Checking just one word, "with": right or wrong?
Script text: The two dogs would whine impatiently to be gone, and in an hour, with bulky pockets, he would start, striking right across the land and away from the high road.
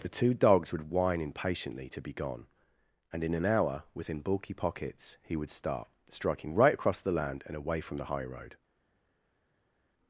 wrong